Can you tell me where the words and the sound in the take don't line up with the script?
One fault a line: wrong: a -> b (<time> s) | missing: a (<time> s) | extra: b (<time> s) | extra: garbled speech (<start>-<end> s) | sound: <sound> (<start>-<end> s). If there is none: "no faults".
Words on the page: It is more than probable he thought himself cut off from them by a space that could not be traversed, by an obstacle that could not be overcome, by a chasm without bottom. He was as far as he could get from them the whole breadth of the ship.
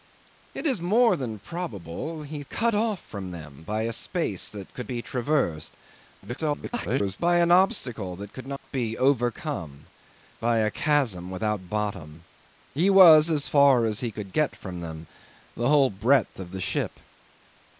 missing: thought himself (2.4 s)
missing: not (4.9 s)
extra: garbled speech (6.2-7.2 s)
sound: dropout (8.6-8.6 s)